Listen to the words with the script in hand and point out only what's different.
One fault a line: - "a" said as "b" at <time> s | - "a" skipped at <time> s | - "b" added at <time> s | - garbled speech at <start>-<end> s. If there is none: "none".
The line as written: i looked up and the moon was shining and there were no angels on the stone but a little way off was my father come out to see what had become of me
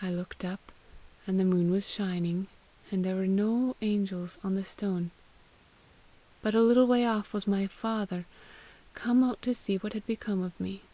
none